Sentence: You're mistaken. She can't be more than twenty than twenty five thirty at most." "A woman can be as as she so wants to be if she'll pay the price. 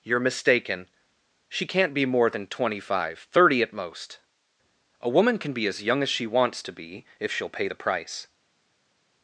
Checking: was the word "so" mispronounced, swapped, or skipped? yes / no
yes